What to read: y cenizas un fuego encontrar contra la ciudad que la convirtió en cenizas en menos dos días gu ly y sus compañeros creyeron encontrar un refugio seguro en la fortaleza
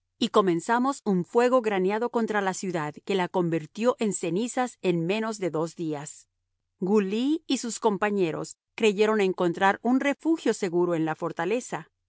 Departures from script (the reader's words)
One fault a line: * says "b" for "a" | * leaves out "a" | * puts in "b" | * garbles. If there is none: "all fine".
* says "comenzamos" for "cenizas"
* says "graneado" for "encontrar"
* puts in "de"